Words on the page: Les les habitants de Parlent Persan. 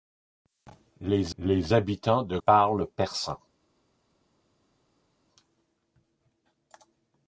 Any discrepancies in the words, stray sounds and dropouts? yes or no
no